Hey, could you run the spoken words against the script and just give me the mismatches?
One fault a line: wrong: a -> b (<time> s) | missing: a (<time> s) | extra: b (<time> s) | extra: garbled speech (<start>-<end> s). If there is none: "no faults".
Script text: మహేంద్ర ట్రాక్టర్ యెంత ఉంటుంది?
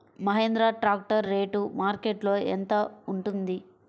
extra: రేటు మార్కెట్లో (1.3 s)